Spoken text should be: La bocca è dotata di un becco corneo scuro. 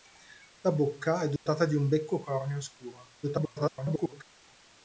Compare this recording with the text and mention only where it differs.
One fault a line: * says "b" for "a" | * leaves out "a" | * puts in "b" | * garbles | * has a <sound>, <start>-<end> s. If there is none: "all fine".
* has a dropout, 1.4-1.5 s
* garbles